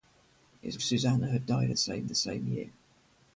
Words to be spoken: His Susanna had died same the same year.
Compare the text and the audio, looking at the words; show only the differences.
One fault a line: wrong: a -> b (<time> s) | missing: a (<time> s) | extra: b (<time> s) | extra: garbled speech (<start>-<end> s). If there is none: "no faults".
no faults